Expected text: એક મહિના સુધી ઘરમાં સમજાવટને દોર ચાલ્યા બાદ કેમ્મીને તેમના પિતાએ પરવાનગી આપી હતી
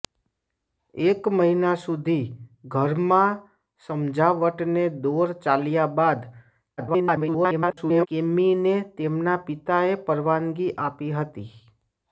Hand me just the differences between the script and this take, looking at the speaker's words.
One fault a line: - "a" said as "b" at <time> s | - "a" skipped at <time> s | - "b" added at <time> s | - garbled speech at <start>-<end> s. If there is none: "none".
- garbled speech at 6.8-8.1 s